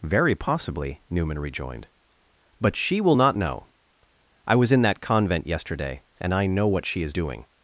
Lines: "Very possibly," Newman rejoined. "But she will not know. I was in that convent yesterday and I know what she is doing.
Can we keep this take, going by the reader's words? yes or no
yes